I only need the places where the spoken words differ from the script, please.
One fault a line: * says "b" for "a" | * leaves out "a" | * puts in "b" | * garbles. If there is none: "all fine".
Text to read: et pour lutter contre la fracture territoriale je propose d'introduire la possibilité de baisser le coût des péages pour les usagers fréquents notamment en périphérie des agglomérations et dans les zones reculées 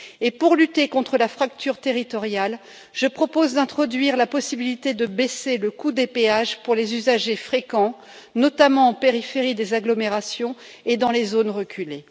all fine